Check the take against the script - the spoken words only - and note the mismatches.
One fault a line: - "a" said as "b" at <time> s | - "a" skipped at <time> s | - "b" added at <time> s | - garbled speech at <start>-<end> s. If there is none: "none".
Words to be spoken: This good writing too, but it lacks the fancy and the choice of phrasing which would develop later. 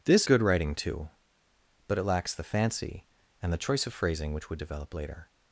none